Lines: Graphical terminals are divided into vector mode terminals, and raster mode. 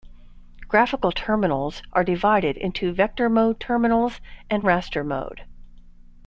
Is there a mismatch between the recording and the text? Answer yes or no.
no